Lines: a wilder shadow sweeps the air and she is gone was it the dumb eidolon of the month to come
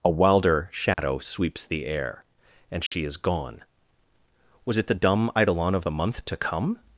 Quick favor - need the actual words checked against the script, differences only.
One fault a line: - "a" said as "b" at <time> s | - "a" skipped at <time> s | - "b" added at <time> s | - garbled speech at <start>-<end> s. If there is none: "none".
none